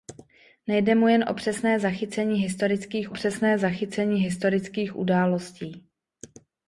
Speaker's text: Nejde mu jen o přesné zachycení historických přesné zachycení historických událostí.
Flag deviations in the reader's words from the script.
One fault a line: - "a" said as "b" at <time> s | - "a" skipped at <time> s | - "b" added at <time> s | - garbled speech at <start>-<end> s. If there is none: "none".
none